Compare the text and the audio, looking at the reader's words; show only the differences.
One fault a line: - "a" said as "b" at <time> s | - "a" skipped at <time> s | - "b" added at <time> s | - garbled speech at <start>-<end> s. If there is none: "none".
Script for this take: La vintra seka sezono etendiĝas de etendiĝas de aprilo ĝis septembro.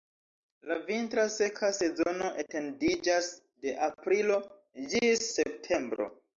- "etendiĝas de" skipped at 3.8 s